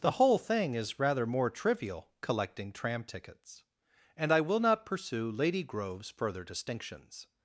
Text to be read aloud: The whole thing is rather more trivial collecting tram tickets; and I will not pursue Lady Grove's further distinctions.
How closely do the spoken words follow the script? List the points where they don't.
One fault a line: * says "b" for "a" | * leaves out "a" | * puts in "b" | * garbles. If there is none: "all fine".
all fine